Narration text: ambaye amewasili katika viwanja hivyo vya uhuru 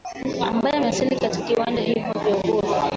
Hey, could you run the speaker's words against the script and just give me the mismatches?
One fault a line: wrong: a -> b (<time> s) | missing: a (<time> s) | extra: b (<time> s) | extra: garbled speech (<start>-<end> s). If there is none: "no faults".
no faults